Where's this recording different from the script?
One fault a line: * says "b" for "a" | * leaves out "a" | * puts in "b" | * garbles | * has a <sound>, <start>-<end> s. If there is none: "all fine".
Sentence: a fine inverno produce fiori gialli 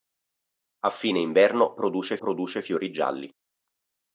* puts in "produce"